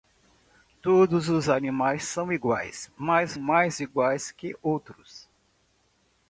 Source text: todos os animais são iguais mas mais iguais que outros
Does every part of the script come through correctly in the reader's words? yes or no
yes